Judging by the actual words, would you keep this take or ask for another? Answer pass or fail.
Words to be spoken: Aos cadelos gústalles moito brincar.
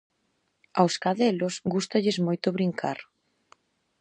pass